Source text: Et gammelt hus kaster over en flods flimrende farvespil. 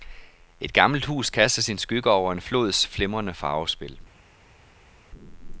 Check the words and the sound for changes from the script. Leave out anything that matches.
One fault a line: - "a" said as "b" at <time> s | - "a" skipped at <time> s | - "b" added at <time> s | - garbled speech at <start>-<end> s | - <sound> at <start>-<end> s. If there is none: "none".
- "sin skygge" added at 1.6 s